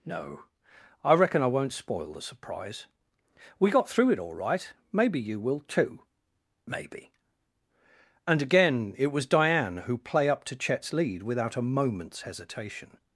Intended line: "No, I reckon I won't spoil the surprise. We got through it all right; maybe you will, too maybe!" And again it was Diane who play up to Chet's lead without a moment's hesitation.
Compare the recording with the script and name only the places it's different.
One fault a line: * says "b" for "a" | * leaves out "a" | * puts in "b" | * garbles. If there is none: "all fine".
all fine